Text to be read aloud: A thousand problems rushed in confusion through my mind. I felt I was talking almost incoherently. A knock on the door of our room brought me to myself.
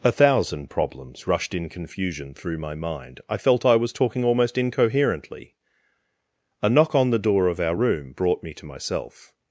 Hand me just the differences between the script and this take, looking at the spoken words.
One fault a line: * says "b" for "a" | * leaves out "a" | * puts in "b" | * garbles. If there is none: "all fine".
all fine